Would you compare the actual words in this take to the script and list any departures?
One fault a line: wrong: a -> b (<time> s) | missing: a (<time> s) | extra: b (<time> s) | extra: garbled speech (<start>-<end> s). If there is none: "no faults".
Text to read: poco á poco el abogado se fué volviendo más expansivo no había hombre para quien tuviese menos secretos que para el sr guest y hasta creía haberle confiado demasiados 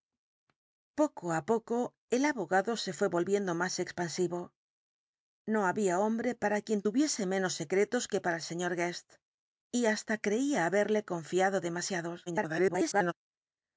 extra: garbled speech (12.3-13.1 s)